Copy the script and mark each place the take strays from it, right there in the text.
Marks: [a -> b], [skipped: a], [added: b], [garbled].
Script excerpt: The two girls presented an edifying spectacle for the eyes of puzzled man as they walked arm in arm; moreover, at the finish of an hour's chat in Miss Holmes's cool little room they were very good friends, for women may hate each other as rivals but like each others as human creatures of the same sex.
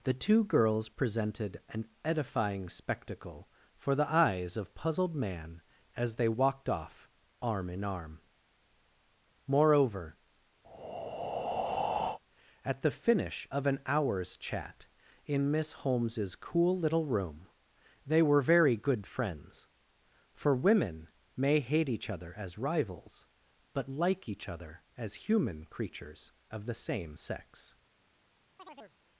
The two girls presented an edifying spectacle for the eyes of puzzled man as they walked [added: off] arm in arm; moreover, at the finish of an hour's chat in Miss Holmes's cool little room they were very good friends, for women may hate each other as rivals but like each [others -> other] as human creatures of the same sex.